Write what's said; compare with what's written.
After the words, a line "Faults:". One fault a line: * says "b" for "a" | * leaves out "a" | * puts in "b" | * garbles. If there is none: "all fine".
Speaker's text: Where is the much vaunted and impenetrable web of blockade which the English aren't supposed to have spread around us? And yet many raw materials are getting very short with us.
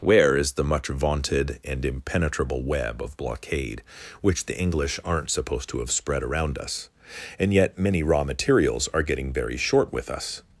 Where is the much vaunted and impenetrable web of blockade which the English aren't supposed to have spread around us? And yet many raw materials are getting very short with us.
Faults:
all fine